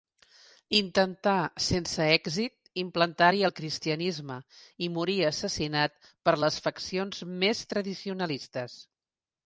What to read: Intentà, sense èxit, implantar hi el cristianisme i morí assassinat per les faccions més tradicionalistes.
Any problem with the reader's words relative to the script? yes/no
no